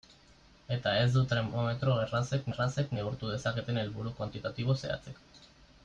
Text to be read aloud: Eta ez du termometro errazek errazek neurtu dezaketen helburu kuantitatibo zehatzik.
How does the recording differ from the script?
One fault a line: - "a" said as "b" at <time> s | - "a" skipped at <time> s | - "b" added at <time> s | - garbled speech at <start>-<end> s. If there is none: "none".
none